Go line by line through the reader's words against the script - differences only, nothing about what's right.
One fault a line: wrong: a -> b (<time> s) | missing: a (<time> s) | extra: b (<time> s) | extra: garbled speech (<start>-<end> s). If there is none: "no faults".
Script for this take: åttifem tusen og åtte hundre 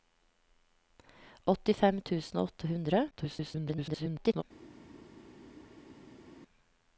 extra: garbled speech (3.1-4.4 s)